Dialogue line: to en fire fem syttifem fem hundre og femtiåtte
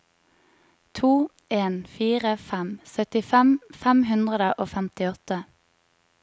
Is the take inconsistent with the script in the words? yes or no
no